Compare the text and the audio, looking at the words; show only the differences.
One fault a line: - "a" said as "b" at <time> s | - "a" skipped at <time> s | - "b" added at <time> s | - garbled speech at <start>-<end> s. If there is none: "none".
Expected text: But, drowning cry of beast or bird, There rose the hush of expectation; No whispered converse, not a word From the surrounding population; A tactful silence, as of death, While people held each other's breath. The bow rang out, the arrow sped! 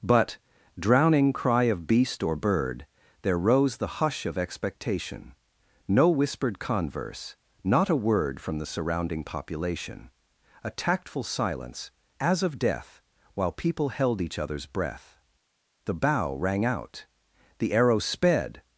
none